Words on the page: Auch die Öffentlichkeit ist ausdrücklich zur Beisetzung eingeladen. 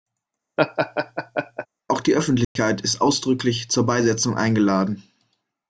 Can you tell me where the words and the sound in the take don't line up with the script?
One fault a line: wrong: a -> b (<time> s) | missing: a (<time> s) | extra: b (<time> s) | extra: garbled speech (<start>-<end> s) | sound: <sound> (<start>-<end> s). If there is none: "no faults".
sound: laugh (0.6-1.7 s)
sound: dropout (2.4-2.6 s)